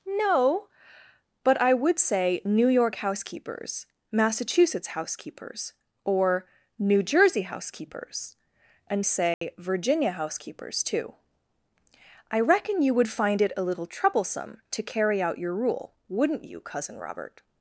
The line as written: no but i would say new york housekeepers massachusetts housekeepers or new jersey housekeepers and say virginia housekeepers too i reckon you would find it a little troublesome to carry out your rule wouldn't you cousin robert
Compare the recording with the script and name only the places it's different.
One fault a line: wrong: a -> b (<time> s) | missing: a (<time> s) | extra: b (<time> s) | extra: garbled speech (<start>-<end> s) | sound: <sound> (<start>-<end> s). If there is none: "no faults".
sound: dropout (9.3-9.4 s)